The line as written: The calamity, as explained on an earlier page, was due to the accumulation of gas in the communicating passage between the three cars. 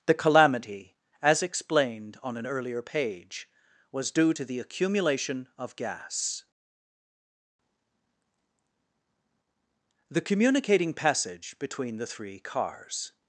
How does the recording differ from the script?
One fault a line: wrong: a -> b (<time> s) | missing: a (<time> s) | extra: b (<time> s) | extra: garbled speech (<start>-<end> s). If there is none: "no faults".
missing: in (6.4 s)